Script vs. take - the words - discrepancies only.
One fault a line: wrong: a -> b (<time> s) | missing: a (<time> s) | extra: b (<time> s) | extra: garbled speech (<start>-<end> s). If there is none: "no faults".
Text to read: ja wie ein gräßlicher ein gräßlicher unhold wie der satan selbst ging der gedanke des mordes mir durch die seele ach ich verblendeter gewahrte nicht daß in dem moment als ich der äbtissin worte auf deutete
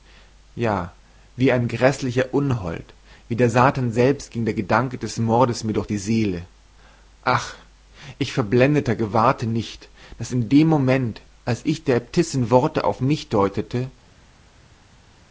missing: ein gräßlicher (2.3 s)
extra: mich (13.0 s)